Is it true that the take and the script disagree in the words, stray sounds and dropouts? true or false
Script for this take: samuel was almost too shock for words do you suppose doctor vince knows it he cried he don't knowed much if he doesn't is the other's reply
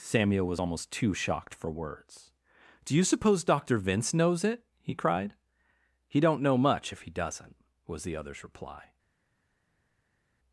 true